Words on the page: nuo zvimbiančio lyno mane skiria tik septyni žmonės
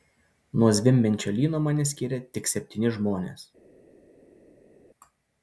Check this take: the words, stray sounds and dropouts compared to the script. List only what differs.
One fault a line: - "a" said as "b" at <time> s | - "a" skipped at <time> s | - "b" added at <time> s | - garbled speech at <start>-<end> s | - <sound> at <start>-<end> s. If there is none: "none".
none